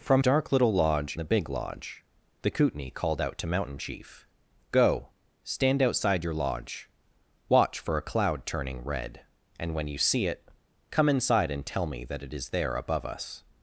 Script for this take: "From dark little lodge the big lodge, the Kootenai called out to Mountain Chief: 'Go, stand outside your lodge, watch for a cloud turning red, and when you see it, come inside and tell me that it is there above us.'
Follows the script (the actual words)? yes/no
yes